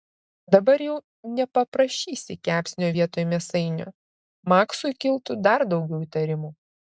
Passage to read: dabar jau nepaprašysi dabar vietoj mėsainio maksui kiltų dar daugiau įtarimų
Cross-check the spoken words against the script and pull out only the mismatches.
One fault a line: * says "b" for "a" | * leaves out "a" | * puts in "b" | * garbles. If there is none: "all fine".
* says "kepsnio" for "dabar"